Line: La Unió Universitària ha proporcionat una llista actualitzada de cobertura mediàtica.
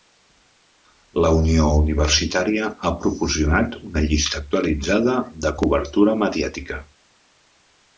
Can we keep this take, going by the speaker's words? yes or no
yes